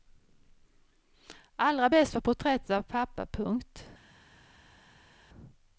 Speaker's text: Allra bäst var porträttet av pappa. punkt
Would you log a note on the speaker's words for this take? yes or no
no